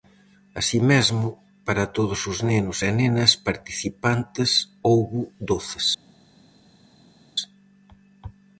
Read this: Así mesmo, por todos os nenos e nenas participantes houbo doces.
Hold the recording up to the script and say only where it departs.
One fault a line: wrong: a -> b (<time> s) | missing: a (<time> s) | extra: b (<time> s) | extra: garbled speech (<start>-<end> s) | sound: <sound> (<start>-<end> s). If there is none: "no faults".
wrong: por -> para (1.7 s)